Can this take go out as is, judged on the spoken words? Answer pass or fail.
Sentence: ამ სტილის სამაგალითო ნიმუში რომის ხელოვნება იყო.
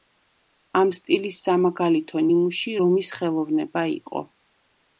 pass